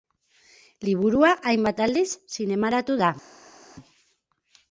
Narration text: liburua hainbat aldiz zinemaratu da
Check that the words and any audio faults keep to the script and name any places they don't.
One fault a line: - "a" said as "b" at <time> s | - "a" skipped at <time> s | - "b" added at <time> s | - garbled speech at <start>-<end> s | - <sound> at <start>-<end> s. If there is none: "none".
none